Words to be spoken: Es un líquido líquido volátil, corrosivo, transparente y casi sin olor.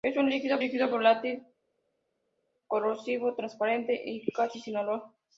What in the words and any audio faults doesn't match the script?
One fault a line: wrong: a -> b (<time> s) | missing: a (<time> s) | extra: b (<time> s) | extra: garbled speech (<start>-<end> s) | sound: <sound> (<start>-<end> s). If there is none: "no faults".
no faults